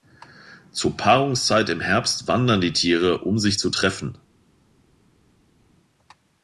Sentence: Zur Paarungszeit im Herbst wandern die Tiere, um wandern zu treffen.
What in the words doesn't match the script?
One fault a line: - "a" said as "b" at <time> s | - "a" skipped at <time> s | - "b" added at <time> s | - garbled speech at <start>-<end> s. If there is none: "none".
- "wandern" said as "sich" at 3.4 s